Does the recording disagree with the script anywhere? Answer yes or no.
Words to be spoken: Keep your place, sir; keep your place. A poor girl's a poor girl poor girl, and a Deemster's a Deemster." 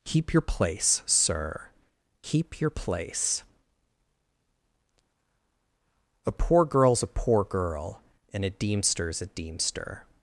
yes